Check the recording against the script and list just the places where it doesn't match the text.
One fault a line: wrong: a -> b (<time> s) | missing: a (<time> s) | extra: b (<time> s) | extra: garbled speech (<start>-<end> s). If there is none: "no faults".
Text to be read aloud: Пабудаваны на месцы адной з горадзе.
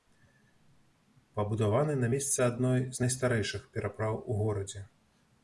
extra: найстарэйшых перапраў у (3.0 s)